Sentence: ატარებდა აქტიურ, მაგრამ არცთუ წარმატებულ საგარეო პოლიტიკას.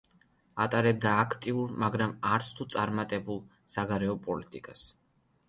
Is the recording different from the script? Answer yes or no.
no